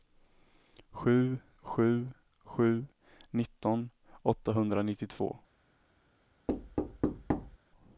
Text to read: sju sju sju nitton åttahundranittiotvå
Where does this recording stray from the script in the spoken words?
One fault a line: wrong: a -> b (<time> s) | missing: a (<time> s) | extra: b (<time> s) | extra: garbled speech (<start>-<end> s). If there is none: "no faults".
no faults